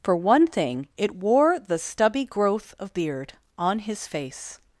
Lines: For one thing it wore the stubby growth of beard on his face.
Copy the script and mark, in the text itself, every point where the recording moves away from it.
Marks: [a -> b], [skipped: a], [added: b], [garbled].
For one thing it wore the stubby growth of beard on his face.